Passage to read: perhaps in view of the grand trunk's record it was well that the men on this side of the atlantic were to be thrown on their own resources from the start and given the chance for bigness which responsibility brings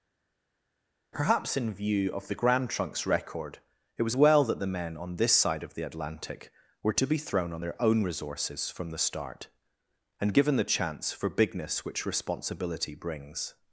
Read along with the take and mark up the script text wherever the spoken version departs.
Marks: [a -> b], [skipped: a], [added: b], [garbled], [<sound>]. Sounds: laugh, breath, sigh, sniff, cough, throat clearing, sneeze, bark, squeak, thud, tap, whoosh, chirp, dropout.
perhaps in view of the grand trunk's record it was well that the men on this side of the atlantic were to be thrown on their own resources from the start and given the chance for bigness which responsibility brings